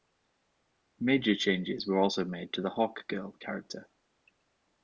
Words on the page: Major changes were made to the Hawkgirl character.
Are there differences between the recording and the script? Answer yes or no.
yes